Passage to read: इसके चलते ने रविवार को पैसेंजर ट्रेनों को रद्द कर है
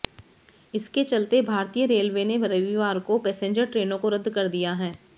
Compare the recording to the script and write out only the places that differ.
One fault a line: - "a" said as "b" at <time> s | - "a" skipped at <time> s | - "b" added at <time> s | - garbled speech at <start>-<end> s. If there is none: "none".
- "भारतीय रेलवे" added at 1.4 s
- "दिया" added at 4.5 s